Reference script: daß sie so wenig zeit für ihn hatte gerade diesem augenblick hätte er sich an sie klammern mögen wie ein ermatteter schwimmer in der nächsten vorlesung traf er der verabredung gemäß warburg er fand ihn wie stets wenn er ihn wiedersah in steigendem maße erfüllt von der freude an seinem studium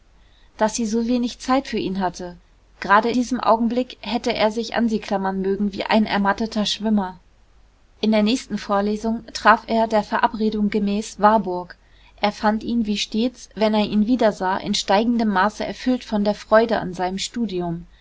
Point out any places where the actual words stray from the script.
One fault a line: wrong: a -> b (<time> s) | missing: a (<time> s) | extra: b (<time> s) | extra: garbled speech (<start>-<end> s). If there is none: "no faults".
no faults